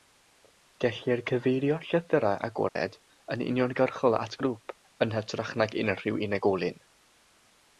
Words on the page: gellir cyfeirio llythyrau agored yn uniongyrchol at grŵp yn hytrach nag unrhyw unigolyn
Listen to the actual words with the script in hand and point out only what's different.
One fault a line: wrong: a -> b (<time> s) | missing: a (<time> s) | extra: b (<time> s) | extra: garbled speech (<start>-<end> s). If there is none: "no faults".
no faults